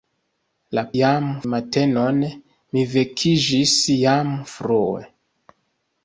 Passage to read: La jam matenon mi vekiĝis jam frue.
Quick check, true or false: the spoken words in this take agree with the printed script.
true